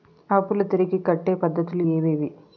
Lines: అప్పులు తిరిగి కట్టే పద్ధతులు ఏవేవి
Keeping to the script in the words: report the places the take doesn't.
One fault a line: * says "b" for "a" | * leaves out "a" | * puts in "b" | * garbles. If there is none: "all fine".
all fine